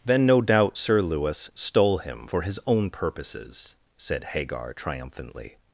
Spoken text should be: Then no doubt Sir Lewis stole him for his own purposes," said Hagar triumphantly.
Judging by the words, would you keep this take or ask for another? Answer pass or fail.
pass